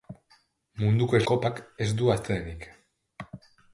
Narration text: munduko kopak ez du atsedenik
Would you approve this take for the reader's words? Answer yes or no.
yes